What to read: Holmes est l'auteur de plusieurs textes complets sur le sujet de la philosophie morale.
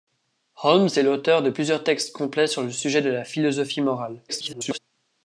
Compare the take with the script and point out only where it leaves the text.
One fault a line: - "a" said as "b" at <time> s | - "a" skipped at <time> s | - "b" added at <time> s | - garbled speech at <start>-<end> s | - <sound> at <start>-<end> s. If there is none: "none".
- garbled speech at 4.3-4.8 s